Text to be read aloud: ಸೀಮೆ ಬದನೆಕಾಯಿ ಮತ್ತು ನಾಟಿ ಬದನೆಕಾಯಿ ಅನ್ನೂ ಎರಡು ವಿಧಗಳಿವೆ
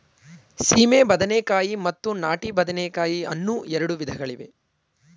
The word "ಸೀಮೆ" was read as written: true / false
true